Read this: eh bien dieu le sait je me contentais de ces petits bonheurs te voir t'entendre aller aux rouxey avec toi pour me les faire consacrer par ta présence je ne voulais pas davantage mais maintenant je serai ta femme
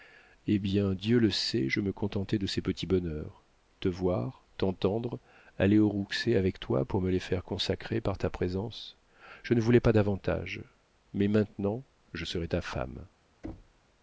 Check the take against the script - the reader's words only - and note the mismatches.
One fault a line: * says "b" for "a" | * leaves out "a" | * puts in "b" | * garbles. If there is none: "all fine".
all fine